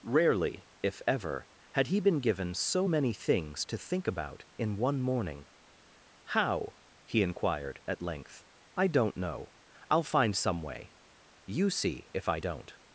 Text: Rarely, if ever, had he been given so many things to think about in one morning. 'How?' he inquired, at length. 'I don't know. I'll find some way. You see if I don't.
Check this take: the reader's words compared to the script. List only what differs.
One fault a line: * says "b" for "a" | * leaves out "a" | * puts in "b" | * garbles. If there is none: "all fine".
all fine